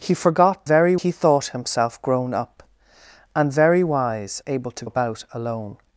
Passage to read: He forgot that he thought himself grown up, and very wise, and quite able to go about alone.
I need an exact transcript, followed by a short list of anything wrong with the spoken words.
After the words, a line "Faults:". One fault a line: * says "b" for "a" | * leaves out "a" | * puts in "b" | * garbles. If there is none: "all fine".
He forgot very he thought himself grown up, and very wise, able to about alone.
Faults:
* says "very" for "that"
* leaves out "and quite"
* leaves out "go"